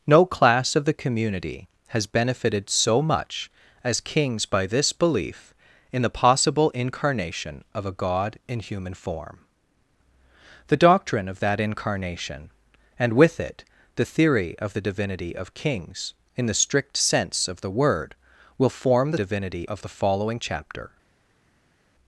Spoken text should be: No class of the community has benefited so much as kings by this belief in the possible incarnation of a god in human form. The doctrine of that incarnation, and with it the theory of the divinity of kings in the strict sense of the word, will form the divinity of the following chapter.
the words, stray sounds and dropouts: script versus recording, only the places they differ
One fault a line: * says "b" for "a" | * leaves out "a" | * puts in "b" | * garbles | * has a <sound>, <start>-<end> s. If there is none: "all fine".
all fine